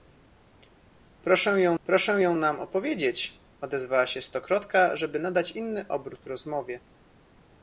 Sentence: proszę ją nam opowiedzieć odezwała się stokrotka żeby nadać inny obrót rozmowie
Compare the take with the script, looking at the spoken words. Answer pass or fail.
fail